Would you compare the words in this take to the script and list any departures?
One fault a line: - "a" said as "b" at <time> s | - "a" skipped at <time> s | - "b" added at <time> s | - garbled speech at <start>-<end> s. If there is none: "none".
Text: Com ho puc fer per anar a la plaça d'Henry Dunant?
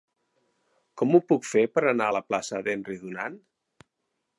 none